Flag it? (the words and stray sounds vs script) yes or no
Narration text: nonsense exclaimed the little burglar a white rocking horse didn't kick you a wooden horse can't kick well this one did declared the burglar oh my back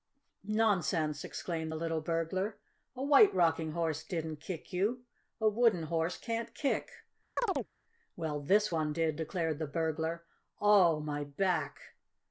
yes